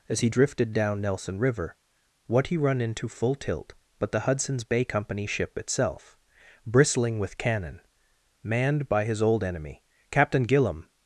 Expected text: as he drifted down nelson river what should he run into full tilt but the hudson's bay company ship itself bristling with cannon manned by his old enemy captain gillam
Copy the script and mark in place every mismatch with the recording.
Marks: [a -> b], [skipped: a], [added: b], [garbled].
as he drifted down nelson river what [skipped: should] he run into full tilt but the hudson's bay company ship itself bristling with cannon manned by his old enemy captain gillam